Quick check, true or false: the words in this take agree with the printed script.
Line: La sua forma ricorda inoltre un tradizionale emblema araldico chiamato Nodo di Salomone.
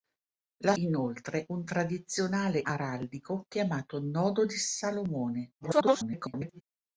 false